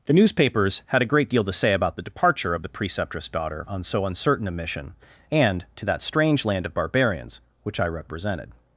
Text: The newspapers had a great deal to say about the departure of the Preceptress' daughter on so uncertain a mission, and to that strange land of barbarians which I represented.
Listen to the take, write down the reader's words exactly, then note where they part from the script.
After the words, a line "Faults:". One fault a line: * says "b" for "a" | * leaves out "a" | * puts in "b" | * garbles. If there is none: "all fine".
The newspapers had a great deal to say about the departure of the Preceptress' daughter on so uncertain a mission, and to that strange land of barbarians which I represented.
Faults:
all fine